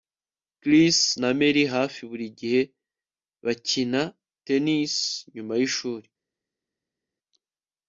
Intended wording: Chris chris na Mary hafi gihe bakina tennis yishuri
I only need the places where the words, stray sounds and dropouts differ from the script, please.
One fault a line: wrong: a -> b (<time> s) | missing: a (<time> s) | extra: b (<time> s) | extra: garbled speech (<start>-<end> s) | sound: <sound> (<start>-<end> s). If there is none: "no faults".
missing: chris (1.0 s)
extra: buri (2.1 s)
extra: nyuma (5.3 s)